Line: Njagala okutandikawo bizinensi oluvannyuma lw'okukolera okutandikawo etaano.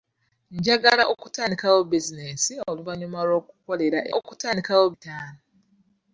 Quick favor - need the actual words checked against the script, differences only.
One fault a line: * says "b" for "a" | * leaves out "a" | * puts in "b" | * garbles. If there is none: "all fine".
all fine